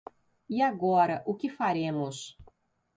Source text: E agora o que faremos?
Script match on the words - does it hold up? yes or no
yes